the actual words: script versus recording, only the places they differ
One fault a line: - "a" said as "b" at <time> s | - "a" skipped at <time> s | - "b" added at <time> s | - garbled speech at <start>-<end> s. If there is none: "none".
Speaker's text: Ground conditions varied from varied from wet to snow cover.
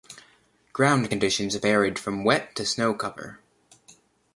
- "varied from" skipped at 2.2 s